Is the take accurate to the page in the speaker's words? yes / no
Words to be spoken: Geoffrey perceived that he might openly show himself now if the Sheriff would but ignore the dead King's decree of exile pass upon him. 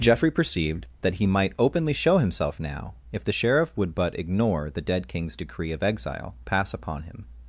yes